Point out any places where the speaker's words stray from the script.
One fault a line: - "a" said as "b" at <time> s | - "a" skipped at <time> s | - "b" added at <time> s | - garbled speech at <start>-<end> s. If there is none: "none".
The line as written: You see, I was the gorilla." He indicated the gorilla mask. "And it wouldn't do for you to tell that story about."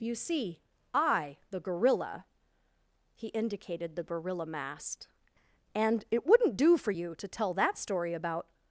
- "was" skipped at 1.4 s
- "mask" said as "mast" at 4.5 s